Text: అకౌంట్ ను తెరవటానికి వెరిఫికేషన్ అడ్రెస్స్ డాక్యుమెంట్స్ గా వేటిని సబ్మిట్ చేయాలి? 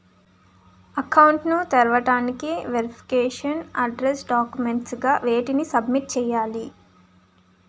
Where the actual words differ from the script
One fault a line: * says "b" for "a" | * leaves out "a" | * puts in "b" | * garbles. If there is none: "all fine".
all fine